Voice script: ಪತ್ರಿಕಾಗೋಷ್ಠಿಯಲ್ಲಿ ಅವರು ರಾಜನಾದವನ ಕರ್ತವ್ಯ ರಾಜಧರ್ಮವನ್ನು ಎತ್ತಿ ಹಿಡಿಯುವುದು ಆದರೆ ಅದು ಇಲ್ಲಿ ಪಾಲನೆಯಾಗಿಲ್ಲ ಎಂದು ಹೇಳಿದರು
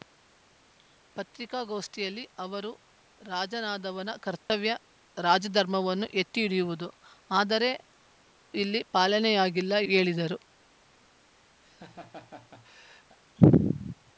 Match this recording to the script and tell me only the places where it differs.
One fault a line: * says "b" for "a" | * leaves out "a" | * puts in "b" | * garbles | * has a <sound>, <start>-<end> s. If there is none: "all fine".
* has a dropout, 4.4-4.5 s
* leaves out "ಅದು"
* leaves out "ಎಂದು"
* has a laugh, 11.6-13.2 s